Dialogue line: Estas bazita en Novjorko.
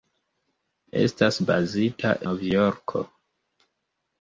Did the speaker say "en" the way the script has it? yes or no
no